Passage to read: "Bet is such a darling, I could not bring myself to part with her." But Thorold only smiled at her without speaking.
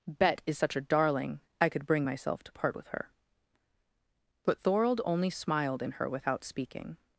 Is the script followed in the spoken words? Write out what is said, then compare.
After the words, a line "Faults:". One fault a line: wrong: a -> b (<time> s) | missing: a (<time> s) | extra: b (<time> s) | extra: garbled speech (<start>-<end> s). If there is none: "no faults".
"Bet is such a darling, I could bring myself to part with her." But Thorold only smiled in her without speaking.
Faults:
missing: not (1.8 s)
wrong: at -> in (5.8 s)